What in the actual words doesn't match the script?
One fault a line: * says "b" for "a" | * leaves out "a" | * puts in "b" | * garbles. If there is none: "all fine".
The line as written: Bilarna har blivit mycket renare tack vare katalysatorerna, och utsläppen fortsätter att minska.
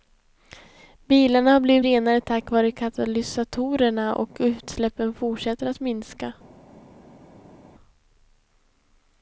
* leaves out "mycket"